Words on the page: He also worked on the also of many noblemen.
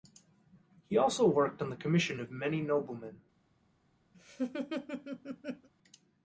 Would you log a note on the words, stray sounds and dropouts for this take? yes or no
yes